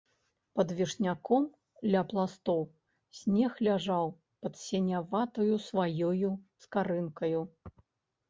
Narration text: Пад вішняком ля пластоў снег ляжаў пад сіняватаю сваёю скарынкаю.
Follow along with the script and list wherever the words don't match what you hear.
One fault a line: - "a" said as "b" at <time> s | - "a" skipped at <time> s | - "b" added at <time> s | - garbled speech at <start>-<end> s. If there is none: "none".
none